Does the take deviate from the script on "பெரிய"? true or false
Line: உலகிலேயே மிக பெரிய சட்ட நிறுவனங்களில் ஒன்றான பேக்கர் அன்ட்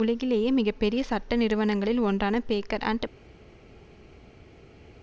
false